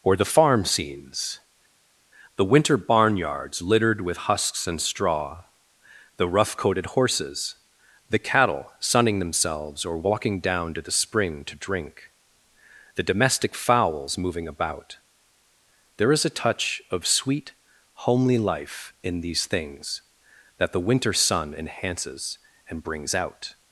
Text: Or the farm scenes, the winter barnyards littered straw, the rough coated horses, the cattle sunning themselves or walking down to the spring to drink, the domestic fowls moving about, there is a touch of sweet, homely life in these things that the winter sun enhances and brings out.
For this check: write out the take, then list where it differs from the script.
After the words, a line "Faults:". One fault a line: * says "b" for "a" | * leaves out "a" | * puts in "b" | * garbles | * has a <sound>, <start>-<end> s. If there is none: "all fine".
Or the farm scenes, the winter barnyards littered with husks and straw, the rough coated horses, the cattle sunning themselves or walking down to the spring to drink, the domestic fowls moving about, there is a touch of sweet, homely life in these things that the winter sun enhances and brings out.
Faults:
* puts in "with husks and"